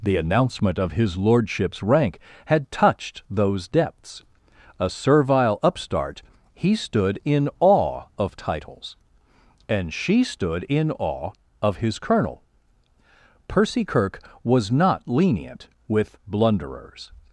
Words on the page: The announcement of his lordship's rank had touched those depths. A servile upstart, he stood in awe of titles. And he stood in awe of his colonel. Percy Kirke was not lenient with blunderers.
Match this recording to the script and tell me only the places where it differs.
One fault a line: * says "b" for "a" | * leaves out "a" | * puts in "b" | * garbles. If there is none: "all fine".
* says "she" for "he"